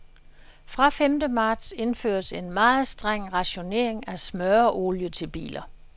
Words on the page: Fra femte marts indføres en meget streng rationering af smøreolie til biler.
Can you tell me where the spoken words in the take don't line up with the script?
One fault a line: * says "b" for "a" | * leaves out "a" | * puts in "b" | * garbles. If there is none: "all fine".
all fine